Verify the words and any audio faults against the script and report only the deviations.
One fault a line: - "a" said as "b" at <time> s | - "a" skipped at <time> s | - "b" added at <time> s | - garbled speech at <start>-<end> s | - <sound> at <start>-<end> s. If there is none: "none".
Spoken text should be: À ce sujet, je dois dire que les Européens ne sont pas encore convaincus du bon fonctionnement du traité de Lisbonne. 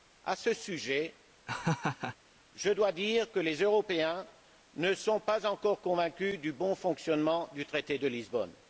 - laugh at 1.5-2.2 s